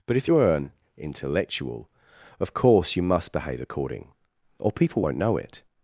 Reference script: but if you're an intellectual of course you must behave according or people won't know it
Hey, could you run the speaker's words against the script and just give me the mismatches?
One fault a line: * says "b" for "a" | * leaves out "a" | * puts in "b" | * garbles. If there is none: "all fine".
all fine